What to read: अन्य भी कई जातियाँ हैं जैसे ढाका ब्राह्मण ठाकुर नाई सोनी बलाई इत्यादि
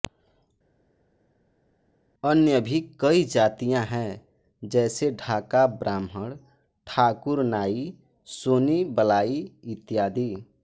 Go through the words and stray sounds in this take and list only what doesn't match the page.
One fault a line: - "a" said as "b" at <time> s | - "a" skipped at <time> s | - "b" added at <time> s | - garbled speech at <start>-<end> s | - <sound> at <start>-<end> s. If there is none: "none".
none